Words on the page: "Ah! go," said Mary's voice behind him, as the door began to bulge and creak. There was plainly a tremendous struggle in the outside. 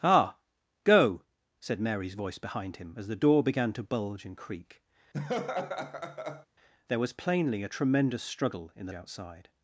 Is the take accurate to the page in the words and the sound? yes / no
no